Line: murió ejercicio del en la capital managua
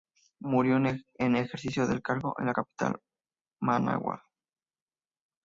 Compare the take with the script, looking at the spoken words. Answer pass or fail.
fail